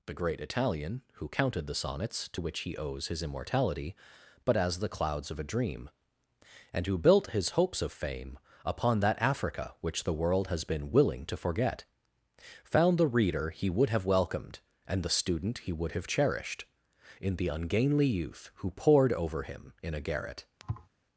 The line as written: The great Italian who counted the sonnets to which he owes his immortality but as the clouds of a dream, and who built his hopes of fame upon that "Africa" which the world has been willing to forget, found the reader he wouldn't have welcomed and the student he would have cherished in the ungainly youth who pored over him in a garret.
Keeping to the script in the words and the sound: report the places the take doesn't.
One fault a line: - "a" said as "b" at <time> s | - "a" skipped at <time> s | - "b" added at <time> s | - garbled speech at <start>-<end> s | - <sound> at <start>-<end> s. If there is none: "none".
- "wouldn't" said as "would" at 13.7 s
- thud at 20.6-20.9 s